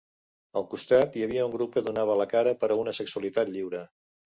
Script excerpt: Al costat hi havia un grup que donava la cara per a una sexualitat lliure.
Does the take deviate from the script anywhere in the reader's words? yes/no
no